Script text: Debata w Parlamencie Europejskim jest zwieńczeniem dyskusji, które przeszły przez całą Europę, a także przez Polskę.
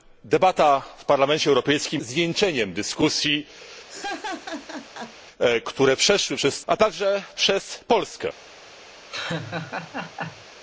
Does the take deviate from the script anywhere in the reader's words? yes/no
yes